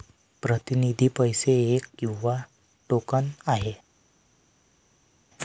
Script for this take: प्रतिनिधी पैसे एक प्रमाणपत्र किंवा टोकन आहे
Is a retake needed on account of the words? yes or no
yes